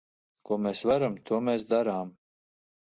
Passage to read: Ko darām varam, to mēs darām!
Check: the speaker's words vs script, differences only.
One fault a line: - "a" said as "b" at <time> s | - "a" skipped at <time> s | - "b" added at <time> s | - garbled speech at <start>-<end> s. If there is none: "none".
- "darām" said as "mēs" at 0.7 s